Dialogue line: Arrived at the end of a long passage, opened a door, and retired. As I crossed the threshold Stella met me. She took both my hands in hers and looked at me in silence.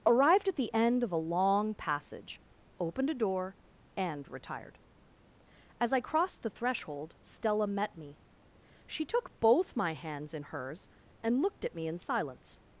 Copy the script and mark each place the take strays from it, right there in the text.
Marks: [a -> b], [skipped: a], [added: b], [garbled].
Arrived at the end of a long passage, opened a door, and retired. As I crossed the threshold Stella met me. She took both my hands in hers and looked at me in silence.